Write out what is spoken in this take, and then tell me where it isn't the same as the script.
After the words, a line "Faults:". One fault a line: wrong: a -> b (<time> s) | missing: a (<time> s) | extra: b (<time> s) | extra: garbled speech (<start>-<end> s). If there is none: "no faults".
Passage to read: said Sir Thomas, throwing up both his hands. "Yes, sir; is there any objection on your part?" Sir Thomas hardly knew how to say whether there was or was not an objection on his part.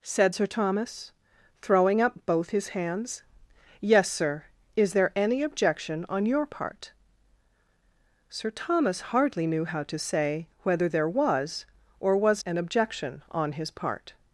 said Sir Thomas, throwing up both his hands. "Yes, sir; is there any objection on your part?" Sir Thomas hardly knew how to say whether there was or was an objection on his part.
Faults:
missing: not (12.4 s)